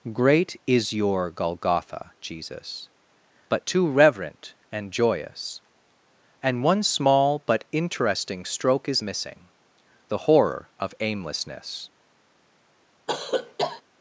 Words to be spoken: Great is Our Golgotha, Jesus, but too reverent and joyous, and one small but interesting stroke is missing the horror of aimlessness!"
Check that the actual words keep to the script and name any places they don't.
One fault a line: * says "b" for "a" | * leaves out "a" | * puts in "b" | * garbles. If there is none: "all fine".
* says "Your" for "Our"